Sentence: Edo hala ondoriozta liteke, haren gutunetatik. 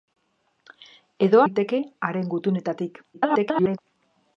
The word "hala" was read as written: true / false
false